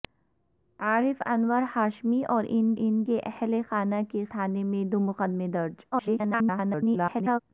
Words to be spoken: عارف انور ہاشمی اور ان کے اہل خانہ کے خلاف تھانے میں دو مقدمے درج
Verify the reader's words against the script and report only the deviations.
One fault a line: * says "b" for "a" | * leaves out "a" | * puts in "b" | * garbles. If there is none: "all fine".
* puts in "ان"
* leaves out "خلاف"
* garbles